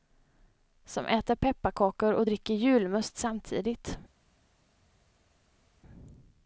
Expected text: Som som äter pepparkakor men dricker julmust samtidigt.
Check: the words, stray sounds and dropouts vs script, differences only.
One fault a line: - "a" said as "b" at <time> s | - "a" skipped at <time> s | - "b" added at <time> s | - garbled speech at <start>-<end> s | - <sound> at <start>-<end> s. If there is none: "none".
- "som" skipped at 1.1 s
- "men" said as "och" at 2.1 s